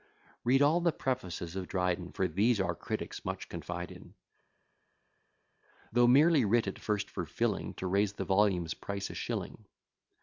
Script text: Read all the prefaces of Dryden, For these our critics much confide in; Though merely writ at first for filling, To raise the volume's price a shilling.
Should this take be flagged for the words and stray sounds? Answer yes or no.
no